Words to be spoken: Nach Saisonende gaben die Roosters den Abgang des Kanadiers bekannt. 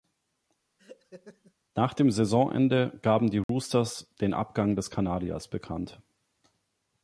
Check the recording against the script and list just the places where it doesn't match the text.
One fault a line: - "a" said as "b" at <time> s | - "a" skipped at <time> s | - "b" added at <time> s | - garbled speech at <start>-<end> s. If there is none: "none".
- "dem" added at 1.9 s